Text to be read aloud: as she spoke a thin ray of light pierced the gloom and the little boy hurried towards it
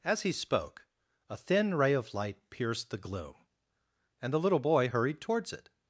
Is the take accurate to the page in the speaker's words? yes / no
no